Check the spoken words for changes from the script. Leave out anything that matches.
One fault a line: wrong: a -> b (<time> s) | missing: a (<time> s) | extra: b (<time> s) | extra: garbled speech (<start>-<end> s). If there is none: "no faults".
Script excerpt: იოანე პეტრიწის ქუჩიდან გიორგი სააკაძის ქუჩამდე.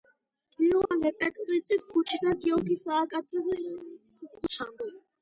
no faults